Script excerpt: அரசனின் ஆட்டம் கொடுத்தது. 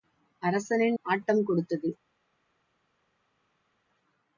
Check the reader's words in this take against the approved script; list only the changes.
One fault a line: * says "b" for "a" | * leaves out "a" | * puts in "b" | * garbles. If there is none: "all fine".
all fine